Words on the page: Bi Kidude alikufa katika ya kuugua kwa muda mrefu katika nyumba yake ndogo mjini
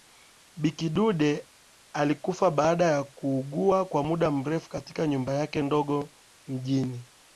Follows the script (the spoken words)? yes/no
no